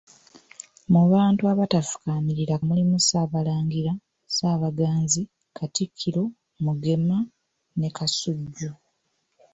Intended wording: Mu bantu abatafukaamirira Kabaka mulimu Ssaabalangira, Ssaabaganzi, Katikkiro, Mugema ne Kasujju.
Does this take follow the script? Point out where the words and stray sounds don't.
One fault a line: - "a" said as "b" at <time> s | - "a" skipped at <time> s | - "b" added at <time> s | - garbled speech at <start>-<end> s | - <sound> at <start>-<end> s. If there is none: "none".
- "Kabaka" skipped at 2.5 s